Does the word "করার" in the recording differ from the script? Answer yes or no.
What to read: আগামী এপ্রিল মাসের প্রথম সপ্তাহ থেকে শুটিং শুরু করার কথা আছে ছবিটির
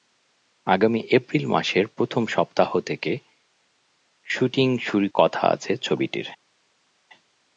yes